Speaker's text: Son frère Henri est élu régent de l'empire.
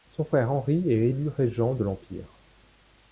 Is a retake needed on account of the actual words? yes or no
no